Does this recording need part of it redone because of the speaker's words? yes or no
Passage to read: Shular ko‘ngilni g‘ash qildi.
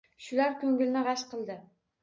no